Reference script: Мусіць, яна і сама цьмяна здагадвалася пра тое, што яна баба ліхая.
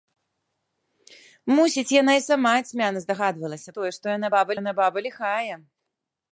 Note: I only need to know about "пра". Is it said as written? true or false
false